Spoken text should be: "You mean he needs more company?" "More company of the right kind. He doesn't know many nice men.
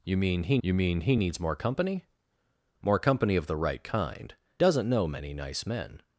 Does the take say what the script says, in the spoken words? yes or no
no